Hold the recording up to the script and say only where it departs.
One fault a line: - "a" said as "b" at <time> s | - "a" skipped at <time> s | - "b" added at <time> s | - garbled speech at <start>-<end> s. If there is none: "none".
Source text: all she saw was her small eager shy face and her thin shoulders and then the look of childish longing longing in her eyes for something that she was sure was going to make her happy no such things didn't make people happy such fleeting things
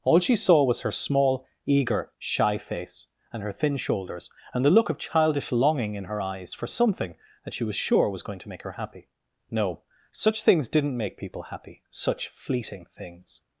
- "then" skipped at 4.7 s
- "longing" skipped at 6.0 s